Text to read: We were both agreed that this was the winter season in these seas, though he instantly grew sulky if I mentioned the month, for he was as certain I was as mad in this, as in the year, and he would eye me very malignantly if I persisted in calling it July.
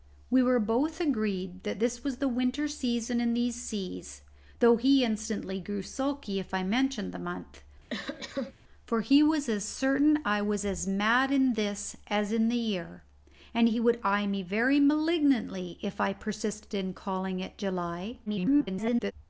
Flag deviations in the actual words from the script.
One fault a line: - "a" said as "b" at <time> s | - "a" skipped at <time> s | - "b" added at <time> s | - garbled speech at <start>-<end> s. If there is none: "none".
- garbled speech at 18.3-19.1 s